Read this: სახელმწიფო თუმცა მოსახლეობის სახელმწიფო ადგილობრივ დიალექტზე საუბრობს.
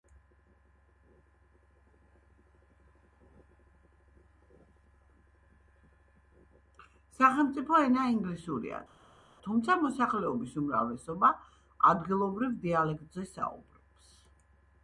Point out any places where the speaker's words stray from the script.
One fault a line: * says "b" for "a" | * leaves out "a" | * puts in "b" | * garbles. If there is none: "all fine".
* puts in "ენა ინგლისურია"
* says "უმრავლესობა" for "სახელმწიფო"